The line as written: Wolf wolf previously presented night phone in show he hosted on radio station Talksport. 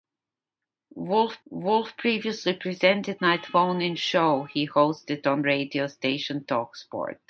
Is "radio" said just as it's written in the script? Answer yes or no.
yes